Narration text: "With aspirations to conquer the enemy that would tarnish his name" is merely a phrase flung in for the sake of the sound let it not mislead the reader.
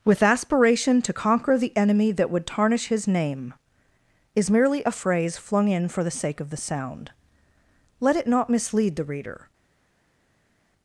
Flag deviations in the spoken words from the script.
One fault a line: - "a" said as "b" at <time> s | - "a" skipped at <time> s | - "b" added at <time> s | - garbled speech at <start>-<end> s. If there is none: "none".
- "aspirations" said as "aspiration" at 0.2 s